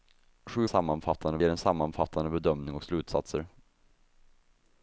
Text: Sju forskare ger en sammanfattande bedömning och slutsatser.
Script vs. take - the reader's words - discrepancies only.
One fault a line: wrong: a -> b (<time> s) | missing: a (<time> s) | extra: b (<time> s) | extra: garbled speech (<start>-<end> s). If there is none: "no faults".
wrong: forskare -> sammanfattande (0.6 s)